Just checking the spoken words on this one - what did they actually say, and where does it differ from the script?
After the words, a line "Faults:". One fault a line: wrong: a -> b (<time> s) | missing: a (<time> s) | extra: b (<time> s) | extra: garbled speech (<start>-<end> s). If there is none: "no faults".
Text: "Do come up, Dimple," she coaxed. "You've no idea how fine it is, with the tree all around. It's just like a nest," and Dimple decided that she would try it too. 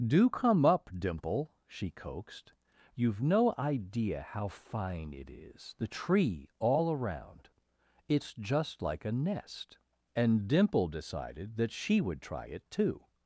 "Do come up, Dimple," she coaxed. "You've no idea how fine it is, the tree all around. It's just like a nest," and Dimple decided that she would try it too.
Faults:
missing: with (5.7 s)